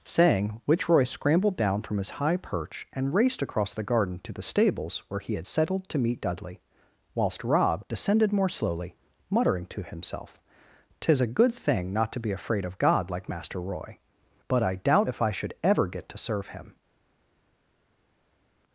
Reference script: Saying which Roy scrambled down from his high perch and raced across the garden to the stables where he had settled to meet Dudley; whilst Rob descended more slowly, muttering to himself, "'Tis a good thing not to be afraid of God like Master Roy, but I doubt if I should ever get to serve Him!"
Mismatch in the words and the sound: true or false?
false